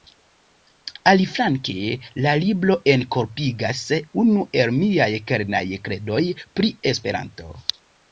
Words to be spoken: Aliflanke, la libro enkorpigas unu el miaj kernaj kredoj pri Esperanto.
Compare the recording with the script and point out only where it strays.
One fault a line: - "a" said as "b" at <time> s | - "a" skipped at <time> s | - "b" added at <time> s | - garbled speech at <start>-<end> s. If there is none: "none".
none